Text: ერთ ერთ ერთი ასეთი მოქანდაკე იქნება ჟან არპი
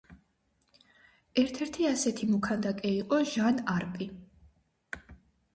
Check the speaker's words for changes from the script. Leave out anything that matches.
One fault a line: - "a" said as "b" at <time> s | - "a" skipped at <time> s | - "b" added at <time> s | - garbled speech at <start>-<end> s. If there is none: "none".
- "ერთ" skipped at 1.6 s
- "იქნება" said as "იყო" at 3.0 s